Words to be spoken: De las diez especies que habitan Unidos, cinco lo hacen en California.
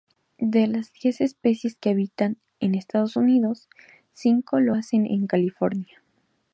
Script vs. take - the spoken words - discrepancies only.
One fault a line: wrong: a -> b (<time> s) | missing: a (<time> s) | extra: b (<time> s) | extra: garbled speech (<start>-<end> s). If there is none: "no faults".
extra: en Estados (2.6 s)